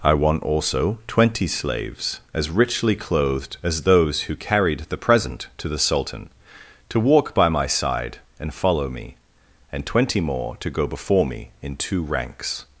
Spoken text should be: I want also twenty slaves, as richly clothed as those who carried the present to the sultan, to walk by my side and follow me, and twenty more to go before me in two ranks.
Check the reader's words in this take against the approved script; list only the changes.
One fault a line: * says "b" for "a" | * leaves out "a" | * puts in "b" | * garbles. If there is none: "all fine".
all fine